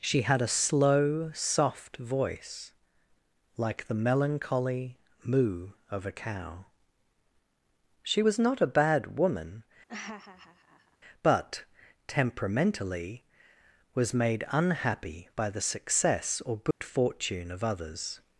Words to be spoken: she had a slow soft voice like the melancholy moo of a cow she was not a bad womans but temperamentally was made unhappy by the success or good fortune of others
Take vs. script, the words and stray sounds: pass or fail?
fail